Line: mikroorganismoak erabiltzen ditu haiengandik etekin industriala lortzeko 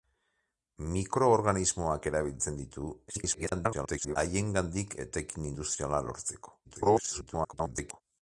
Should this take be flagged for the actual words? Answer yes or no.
yes